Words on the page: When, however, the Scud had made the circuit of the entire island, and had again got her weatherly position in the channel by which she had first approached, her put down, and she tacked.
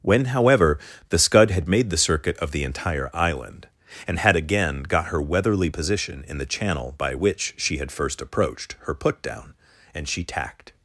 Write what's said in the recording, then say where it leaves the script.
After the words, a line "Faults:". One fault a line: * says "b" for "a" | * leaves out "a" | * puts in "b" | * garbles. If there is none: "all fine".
When, however, the Scud had made the circuit of the entire island, and had again got her weatherly position in the channel by which she had first approached, her put down, and she tacked.
Faults:
all fine